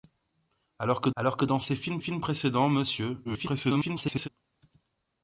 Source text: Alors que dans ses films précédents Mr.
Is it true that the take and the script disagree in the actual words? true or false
true